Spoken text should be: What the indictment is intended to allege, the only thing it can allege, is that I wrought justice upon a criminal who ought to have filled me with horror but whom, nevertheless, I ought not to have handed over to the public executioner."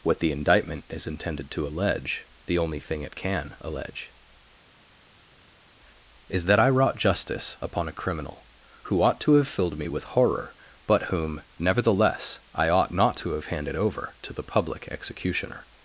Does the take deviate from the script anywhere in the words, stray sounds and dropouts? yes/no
no